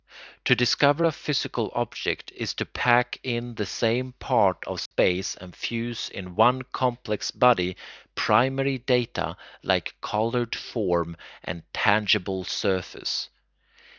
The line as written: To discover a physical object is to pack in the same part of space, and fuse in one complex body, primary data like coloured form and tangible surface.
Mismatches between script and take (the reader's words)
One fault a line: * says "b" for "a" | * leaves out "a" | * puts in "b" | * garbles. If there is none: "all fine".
all fine